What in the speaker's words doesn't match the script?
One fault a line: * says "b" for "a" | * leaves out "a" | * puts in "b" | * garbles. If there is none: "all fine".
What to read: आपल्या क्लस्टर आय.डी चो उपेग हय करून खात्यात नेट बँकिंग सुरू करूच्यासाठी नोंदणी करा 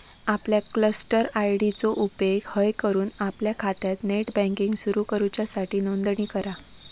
* puts in "आपल्या"